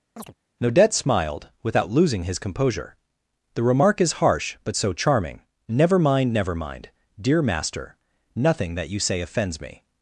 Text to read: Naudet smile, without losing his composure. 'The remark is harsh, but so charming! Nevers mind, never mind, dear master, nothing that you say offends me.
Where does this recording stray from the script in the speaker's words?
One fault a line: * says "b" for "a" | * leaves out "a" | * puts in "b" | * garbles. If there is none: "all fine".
* says "smiled" for "smile"
* says "Never" for "Nevers"